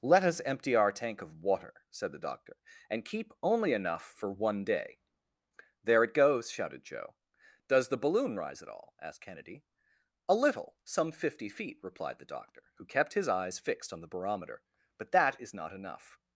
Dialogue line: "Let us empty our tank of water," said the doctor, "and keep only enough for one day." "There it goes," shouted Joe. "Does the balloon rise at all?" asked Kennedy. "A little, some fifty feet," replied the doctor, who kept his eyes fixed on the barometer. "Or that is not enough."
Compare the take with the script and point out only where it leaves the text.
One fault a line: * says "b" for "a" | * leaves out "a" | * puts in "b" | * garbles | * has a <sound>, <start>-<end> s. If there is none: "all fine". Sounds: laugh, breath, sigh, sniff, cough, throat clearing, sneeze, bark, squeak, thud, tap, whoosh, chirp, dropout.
* says "But" for "Or"